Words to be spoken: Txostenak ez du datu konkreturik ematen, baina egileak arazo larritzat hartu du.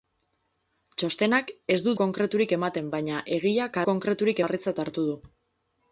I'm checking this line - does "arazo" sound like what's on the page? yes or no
no